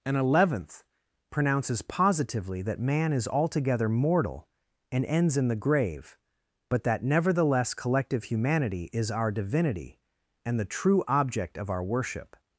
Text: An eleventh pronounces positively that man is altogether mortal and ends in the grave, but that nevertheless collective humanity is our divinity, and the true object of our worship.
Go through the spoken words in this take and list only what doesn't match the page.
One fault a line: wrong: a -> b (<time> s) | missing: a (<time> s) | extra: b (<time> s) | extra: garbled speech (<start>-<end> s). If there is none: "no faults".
no faults